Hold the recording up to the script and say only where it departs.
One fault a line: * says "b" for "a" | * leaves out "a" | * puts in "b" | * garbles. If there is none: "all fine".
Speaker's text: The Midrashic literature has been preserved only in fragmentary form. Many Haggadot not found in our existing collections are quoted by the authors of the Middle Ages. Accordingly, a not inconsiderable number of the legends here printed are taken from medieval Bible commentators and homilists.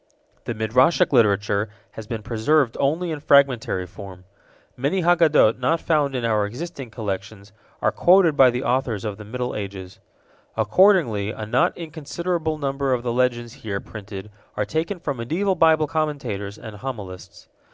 all fine